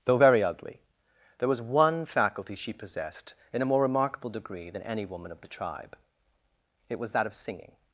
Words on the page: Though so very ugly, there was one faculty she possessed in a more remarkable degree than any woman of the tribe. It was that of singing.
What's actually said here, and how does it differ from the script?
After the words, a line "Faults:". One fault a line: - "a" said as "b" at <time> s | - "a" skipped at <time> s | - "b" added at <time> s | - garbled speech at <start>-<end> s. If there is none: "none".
Though very ugly, there was one faculty she possessed in a more remarkable degree than any woman of the tribe. It was that of singing.
Faults:
- "so" skipped at 0.2 s